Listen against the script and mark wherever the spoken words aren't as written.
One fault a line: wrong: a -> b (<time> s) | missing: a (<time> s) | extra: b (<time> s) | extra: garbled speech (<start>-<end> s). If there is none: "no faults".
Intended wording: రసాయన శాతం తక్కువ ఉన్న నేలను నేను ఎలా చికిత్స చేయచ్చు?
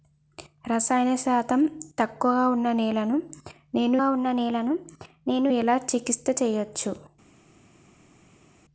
extra: ఉన్న నేలను నేను (4.1 s)